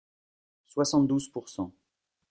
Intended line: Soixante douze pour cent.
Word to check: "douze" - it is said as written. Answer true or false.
true